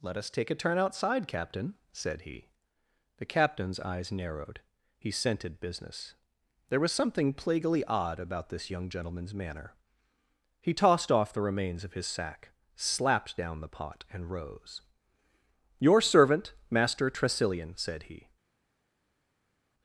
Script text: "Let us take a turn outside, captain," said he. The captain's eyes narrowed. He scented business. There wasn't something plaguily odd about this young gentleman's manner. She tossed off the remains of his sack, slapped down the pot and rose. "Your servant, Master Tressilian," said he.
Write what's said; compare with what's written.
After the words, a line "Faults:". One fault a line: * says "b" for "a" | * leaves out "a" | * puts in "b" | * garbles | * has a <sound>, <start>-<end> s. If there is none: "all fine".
"Let us take a turn outside, captain," said he. The captain's eyes narrowed. He scented business. There was something plaguily odd about this young gentleman's manner. He tossed off the remains of his sack, slapped down the pot and rose. "Your servant, Master Tressilian," said he.
Faults:
* says "was" for "wasn't"
* says "He" for "She"